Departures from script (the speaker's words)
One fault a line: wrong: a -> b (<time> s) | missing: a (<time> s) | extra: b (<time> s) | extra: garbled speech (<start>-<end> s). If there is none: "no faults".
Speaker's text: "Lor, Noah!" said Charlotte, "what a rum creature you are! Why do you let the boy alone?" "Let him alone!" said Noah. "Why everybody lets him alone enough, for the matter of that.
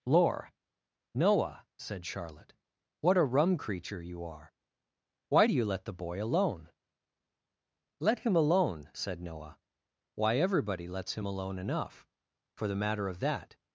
no faults